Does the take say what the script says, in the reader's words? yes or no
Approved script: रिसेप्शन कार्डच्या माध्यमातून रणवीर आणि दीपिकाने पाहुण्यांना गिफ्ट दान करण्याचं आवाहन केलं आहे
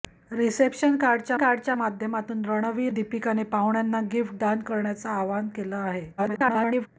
no